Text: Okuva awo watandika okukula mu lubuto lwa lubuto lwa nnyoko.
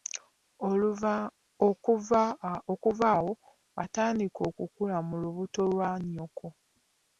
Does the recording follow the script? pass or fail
fail